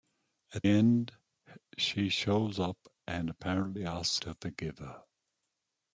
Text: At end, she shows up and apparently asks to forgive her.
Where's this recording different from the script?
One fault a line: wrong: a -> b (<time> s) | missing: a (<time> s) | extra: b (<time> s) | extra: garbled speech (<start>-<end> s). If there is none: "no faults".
no faults